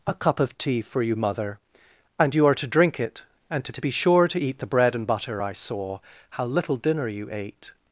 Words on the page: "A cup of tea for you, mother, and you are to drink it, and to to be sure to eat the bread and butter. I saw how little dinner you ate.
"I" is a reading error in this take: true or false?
false